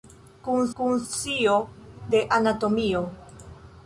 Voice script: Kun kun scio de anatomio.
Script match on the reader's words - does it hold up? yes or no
yes